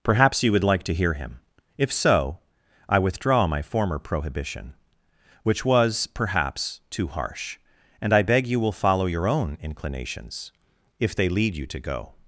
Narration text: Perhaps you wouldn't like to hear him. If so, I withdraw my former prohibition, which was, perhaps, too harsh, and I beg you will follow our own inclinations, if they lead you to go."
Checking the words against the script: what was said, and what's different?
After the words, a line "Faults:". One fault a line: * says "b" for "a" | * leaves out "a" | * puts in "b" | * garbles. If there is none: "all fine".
Perhaps you would like to hear him. If so, I withdraw my former prohibition, which was, perhaps, too harsh, and I beg you will follow your own inclinations, if they lead you to go."
Faults:
* says "would" for "wouldn't"
* says "your" for "our"